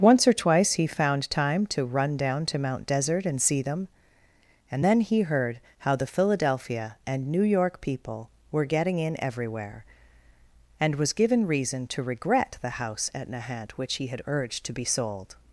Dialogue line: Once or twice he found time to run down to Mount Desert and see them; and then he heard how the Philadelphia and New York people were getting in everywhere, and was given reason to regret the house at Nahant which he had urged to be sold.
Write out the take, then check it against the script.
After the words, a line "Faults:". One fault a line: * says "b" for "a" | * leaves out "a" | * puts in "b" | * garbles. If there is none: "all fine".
Once or twice he found time to run down to Mount Desert and see them; and then he heard how the Philadelphia and New York people were getting in everywhere, and was given reason to regret the house at Nahant which he had urged to be sold.
Faults:
all fine